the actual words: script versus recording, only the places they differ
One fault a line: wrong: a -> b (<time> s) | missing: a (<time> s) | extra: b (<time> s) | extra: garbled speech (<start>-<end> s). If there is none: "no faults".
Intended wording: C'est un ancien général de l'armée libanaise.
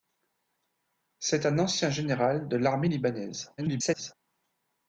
extra: garbled speech (3.6-4.1 s)